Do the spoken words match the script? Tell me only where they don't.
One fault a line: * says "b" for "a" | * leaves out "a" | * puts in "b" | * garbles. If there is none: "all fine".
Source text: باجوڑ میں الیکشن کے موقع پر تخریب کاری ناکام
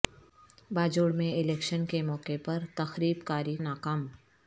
all fine